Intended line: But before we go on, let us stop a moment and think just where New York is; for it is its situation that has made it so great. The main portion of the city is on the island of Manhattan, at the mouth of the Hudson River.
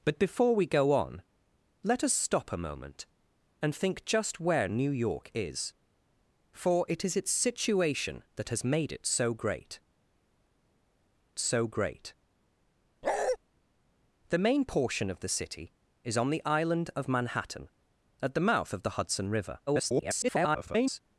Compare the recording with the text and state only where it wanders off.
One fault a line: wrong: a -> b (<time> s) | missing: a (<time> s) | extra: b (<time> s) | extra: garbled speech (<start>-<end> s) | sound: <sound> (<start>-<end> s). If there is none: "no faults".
extra: so great (11.4 s)
sound: bark (13.0-13.4 s)
extra: garbled speech (19.7-21.0 s)